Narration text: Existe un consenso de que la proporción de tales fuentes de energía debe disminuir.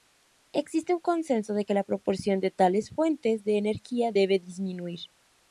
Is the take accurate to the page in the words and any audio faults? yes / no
yes